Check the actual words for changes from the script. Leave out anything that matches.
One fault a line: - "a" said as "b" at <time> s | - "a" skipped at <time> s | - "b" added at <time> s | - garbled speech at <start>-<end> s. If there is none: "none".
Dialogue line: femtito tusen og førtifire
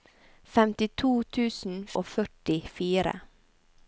none